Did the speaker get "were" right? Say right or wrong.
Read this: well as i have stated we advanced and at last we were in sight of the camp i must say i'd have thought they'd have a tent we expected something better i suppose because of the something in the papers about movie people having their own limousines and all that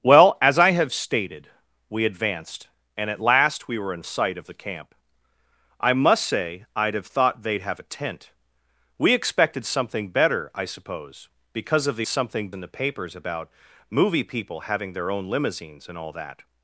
right